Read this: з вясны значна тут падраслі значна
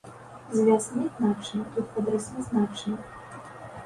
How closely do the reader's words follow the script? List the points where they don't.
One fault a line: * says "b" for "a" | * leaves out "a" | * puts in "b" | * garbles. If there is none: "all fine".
all fine